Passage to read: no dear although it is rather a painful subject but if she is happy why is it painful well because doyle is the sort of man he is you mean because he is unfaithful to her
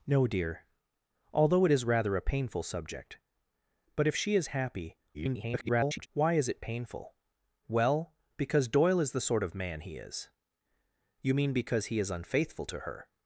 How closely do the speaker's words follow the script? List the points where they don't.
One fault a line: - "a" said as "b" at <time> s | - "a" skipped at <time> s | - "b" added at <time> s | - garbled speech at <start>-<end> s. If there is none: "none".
- garbled speech at 5.1-6.1 s